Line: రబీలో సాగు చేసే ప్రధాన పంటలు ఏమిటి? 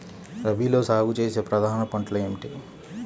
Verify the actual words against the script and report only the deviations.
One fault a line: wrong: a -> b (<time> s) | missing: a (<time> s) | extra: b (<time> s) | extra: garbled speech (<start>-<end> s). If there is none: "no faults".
no faults